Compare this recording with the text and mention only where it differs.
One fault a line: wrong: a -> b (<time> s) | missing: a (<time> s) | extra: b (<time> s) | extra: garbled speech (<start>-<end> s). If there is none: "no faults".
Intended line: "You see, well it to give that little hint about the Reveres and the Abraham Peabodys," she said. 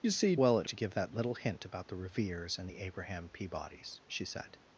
no faults